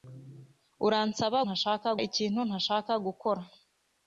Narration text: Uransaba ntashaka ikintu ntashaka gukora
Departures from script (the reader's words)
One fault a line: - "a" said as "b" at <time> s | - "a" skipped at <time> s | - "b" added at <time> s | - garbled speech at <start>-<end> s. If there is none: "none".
none